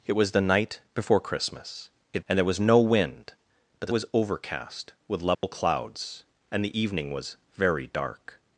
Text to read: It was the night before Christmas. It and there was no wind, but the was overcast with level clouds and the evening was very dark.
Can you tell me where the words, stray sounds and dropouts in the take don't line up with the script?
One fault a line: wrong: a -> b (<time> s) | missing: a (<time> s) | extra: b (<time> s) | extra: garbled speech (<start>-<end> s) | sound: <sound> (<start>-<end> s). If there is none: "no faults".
sound: dropout (5.3-5.4 s)